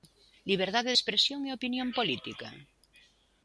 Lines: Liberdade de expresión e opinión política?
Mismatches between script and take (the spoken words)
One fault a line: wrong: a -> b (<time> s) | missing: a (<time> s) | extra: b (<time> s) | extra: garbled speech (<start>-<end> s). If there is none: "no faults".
no faults